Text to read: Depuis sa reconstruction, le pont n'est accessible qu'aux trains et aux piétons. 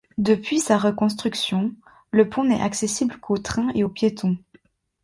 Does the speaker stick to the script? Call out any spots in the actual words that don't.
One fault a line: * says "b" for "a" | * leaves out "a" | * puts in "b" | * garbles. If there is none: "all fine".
all fine